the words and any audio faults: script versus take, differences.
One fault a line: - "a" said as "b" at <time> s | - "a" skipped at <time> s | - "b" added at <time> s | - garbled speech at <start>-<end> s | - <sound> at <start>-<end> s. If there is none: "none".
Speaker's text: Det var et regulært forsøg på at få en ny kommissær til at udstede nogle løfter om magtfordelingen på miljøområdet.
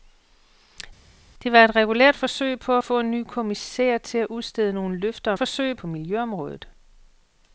- "magtfordelingen" said as "forsøg" at 5.3 s